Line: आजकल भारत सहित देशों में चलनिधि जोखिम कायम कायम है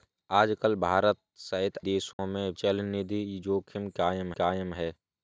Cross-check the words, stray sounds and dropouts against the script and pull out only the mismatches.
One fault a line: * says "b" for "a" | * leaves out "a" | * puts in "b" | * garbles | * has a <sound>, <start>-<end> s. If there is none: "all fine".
* has a dropout, 2.1-2.2 s